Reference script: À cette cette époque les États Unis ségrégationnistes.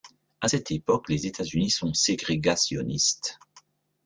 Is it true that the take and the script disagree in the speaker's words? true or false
true